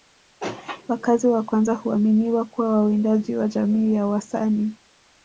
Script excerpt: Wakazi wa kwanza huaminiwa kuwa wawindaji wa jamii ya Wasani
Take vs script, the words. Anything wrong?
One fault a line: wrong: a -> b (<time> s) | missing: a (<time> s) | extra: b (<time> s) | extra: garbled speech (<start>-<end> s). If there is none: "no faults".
no faults